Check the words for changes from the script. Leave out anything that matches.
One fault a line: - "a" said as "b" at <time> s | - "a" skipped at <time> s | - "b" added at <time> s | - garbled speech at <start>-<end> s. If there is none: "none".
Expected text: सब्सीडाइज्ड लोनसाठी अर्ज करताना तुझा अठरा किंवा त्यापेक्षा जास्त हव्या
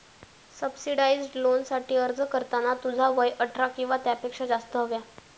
- "वय" added at 3.1 s